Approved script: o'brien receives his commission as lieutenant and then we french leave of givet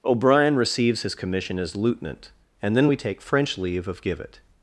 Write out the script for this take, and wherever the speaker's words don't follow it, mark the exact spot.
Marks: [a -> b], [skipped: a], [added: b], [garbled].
o'brien receives his commission as lieutenant and then we [added: take] french leave of givet